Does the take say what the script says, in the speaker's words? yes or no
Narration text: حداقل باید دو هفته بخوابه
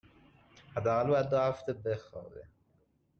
yes